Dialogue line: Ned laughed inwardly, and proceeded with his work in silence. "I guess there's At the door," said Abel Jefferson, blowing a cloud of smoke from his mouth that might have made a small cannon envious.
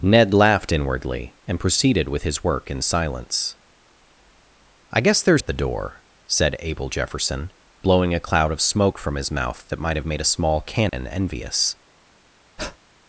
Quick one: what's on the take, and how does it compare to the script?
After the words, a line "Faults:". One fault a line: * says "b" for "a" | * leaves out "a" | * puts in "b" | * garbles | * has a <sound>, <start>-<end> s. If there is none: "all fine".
Ned laughed inwardly, and proceeded with his work in silence. "I guess there's At the door," said Abel Jefferson, blowing a cloud of smoke from his mouth that might have made a small cannon envious.
Faults:
* has a dropout, 10.9-10.9 s
* has a breath, 12.6-12.8 s